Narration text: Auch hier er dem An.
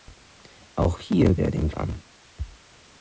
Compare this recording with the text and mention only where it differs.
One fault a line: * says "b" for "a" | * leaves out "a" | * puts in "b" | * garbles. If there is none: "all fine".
all fine